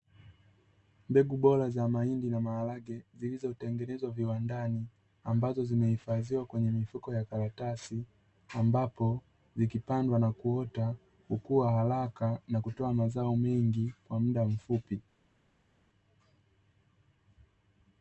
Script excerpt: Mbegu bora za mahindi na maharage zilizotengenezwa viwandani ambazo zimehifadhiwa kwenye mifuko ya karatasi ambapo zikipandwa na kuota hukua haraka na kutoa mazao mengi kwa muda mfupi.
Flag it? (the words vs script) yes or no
no